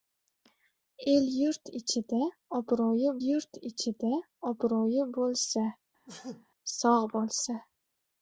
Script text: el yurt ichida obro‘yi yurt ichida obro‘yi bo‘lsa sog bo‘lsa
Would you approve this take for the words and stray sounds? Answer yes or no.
no